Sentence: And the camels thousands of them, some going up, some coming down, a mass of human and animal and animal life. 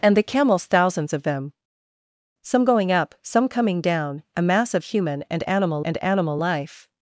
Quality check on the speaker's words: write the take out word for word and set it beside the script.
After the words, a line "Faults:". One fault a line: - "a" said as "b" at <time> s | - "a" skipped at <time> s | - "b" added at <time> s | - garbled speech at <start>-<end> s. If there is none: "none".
And the camels thousands of them, some going up, some coming down, a mass of human and animal and animal life.
Faults:
none